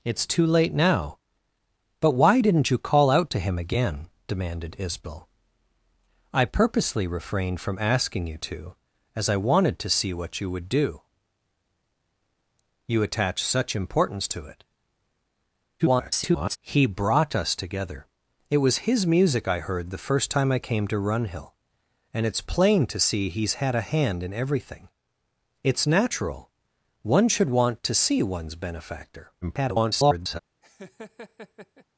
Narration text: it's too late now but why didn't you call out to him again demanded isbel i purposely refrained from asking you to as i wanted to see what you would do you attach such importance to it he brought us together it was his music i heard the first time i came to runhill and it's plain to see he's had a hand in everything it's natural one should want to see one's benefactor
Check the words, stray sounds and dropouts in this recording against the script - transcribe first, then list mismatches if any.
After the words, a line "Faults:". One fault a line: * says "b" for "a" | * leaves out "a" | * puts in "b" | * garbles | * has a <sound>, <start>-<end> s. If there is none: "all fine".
it's too late now but why didn't you call out to him again demanded isbel i purposely refrained from asking you to as i wanted to see what you would do you attach such importance to it [garbled] he brought us together it was his music i heard the first time i came to runhill and it's plain to see he's had a hand in everything it's natural one should want to see one's benefactor [garbled]
Faults:
* garbles
* garbles
* has a laugh, 30.6-31.9 s